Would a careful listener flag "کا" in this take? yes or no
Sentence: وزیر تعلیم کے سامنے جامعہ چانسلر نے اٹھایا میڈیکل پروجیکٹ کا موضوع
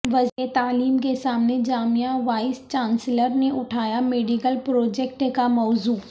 no